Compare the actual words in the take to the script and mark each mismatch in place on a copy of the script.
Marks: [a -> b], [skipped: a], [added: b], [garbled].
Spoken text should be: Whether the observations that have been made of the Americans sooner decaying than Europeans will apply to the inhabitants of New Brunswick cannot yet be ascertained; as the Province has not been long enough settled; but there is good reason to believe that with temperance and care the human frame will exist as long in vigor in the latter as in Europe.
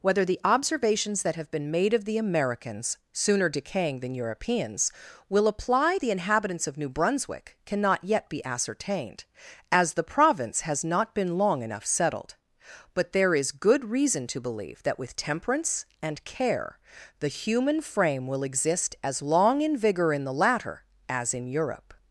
Whether the observations that have been made of the Americans sooner decaying than Europeans will apply [skipped: to] the inhabitants of New Brunswick cannot yet be ascertained; as the Province has not been long enough settled; but there is good reason to believe that with temperance and care the human frame will exist as long in vigor in the latter as in Europe.